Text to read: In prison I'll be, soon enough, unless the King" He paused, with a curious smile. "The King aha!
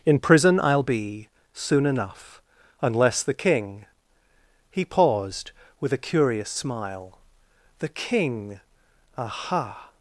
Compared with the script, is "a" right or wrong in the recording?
right